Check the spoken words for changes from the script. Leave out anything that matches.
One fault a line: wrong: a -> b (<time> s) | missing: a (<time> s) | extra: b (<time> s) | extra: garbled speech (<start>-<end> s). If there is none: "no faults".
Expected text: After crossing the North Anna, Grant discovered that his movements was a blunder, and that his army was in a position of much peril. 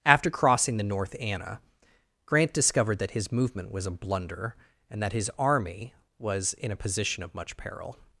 wrong: movements -> movement (3.3 s)